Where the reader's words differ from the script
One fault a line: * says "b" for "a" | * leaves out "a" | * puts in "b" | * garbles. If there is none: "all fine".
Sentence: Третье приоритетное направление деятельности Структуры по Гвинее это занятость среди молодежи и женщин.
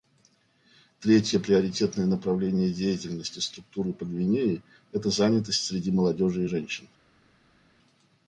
all fine